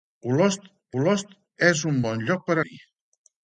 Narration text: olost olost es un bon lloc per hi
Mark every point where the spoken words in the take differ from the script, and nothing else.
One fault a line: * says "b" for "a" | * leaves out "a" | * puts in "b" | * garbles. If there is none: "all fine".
all fine